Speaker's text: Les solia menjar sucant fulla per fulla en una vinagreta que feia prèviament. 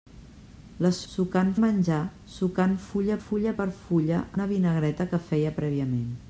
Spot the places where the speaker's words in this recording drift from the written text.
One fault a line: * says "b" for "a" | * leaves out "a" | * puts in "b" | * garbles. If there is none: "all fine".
* says "sucant" for "solia"
* puts in "fulla"
* leaves out "en"